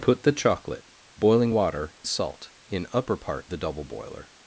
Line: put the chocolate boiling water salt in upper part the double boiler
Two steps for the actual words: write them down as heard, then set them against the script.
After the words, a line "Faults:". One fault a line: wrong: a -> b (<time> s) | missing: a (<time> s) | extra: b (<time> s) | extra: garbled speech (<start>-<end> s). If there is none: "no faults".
put the chocolate boiling water salt in upper part the double boiler
Faults:
no faults